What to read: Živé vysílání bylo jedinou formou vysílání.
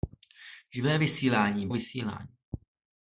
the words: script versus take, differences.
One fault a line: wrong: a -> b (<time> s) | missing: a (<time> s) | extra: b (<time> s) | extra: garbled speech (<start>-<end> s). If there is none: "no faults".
missing: bylo jedinou formou (1.7 s)